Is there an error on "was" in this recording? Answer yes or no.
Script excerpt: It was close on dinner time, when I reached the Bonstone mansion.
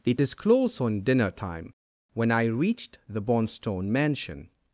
yes